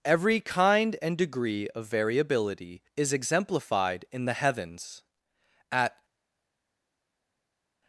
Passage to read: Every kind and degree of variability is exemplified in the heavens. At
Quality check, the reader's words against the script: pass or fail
pass